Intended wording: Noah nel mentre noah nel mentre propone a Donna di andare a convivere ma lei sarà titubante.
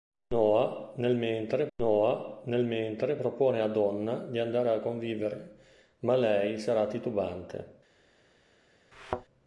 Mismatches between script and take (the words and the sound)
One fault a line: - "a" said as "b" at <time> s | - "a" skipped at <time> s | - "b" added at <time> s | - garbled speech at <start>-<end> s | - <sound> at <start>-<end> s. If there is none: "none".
- thud at 8.9-9.3 s